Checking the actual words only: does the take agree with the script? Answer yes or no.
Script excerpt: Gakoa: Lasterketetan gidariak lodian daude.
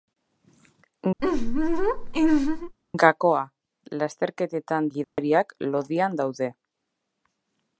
yes